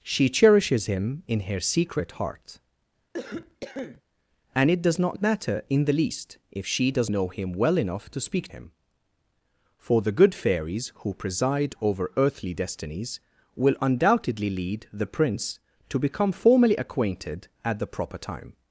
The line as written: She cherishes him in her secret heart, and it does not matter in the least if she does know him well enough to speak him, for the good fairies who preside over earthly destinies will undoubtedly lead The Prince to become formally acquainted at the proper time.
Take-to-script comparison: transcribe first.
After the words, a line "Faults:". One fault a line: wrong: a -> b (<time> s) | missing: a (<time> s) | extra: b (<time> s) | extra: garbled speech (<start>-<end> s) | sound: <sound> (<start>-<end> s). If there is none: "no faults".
She cherishes him in her secret heart, and it does not matter in the least if she does know him well enough to speak him, for the good fairies who preside over earthly destinies will undoubtedly lead The Prince to become formally acquainted at the proper time.
Faults:
sound: cough (3.1-4.0 s)